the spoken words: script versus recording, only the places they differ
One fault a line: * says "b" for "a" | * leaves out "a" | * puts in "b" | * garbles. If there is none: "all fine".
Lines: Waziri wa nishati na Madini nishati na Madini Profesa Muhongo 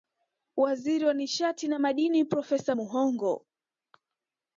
* leaves out "nishati na Madini"